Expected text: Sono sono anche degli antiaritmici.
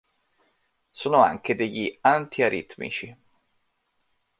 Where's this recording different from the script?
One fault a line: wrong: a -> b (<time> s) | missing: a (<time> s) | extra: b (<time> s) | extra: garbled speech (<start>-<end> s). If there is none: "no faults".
missing: sono (1.2 s)